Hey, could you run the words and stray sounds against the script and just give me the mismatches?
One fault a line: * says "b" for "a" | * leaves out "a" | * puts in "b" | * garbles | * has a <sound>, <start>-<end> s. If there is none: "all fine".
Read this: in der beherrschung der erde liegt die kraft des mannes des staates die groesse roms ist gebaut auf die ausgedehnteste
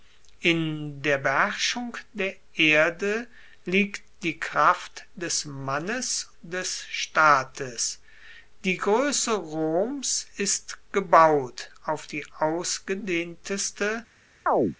* has a chirp, 14.5-14.8 s